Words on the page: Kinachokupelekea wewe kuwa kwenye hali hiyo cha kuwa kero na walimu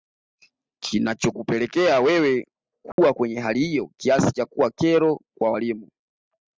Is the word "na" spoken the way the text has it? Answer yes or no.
no